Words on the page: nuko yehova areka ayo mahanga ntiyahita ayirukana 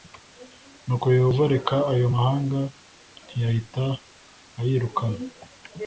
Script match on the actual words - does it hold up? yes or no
yes